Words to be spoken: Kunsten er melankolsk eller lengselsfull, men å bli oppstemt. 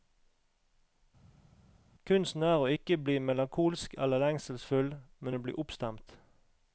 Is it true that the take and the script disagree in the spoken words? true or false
true